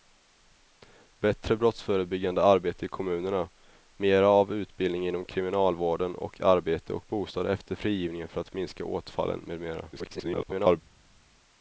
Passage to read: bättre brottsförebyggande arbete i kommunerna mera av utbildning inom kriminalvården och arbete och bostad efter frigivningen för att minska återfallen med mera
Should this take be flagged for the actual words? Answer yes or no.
yes